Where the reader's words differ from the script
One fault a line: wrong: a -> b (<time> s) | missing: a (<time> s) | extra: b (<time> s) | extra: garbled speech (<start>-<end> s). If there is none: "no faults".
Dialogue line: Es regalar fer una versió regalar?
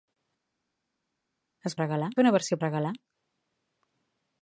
no faults